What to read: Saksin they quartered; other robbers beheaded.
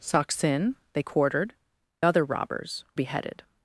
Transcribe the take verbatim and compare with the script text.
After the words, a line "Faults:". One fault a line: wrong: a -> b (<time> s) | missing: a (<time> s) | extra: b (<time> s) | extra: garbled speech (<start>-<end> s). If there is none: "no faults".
Saksin they quartered; other robbers beheaded.
Faults:
no faults